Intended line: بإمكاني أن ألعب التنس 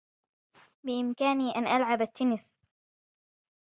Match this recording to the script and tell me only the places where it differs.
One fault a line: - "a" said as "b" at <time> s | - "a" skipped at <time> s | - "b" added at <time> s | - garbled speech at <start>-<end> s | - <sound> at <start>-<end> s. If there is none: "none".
none